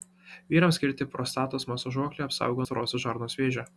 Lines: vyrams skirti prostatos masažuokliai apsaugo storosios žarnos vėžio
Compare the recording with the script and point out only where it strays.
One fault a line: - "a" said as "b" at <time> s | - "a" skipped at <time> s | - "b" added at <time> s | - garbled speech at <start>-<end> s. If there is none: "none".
none